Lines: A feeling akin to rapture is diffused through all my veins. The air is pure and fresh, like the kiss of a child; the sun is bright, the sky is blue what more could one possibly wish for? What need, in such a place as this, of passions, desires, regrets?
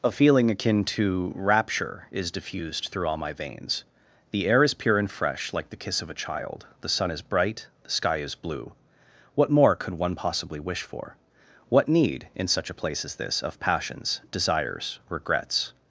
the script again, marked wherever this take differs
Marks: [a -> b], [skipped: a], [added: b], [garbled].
A feeling akin to rapture is diffused through all my veins. The air is pure and fresh, like the kiss of a child; the sun is bright, the sky is blue what more could one possibly wish for? What need, in such a place as this, of passions, desires, regrets?